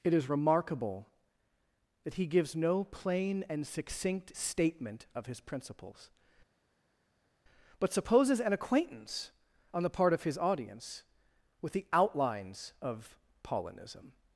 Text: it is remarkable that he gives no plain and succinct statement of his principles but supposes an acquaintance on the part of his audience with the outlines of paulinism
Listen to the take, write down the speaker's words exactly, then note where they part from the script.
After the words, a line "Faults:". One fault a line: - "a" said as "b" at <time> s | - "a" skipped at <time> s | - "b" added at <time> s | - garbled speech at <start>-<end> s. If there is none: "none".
it is remarkable that he gives no plain and succinct statement of his principles but supposes an acquaintance on the part of his audience with the outlines of paulinism
Faults:
none